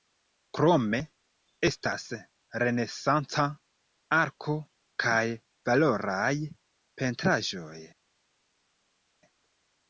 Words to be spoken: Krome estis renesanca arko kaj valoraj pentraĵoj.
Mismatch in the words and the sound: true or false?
true